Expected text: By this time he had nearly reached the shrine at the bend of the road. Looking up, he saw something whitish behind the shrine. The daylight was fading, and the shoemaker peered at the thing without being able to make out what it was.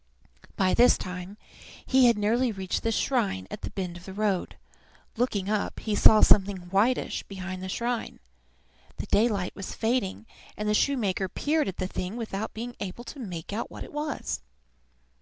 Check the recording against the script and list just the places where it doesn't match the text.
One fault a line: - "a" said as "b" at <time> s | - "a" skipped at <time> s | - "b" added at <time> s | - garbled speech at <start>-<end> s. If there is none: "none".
none